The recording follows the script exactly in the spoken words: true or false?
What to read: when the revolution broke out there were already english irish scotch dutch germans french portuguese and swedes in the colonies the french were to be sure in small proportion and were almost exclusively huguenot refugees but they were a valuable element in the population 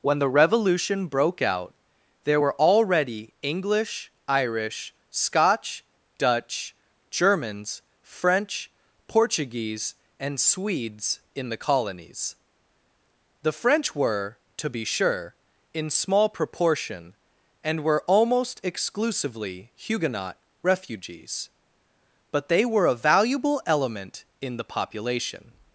true